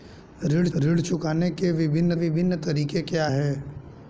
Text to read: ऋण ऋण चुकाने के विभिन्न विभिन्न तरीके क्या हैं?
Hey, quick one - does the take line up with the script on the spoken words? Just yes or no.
yes